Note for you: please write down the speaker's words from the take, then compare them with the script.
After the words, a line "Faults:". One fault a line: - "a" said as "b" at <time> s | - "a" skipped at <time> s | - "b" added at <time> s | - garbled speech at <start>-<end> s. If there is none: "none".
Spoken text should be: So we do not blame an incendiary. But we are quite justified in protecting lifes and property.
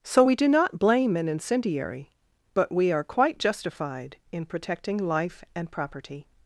So we do not blame an incendiary. But we are quite justified in protecting life and property.
Faults:
- "lifes" said as "life" at 5.0 s